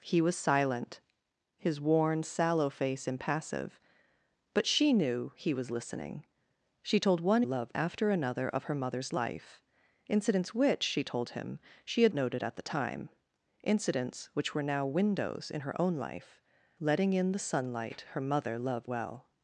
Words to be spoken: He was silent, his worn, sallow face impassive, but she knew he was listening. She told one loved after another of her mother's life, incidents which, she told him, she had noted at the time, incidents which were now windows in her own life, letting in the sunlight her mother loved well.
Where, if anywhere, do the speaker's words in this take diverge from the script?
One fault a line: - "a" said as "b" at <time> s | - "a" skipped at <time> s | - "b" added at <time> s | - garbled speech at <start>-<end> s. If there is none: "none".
none